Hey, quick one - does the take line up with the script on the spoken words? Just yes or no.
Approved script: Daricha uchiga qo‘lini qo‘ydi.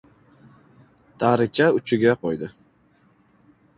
no